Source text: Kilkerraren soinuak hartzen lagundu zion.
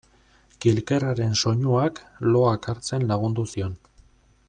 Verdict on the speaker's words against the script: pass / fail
fail